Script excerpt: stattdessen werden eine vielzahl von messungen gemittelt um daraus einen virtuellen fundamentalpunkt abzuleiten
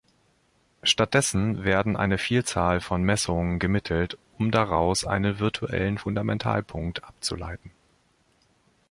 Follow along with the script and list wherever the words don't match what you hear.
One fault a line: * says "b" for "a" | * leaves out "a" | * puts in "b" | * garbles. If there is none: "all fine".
all fine